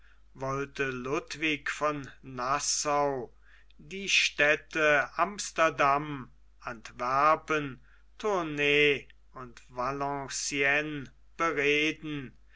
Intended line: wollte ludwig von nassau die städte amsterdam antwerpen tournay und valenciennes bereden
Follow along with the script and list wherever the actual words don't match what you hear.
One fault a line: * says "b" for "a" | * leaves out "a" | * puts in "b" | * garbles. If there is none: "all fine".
all fine